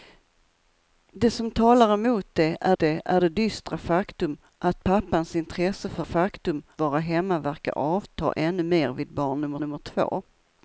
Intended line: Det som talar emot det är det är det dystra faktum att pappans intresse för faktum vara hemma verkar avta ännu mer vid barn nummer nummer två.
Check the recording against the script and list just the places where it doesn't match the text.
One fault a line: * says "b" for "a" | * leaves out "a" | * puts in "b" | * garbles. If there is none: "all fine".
all fine